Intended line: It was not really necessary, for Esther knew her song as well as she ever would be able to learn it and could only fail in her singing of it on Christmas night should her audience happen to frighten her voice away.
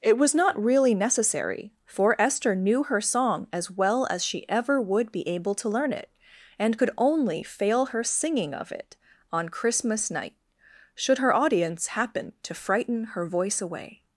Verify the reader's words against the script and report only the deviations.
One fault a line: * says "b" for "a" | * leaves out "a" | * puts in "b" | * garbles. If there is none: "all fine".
* leaves out "in"